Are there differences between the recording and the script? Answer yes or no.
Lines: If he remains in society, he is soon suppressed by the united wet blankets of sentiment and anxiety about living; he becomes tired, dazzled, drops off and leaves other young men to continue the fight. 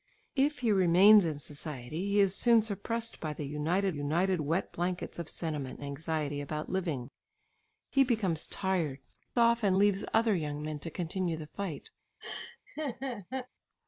yes